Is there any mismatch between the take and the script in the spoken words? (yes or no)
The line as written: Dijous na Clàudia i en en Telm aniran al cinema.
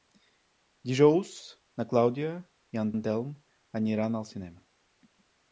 no